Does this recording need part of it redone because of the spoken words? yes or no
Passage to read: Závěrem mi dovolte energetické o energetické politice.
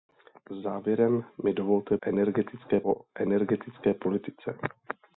no